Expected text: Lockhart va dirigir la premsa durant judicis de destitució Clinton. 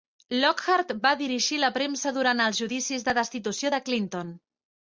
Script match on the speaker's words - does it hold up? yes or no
no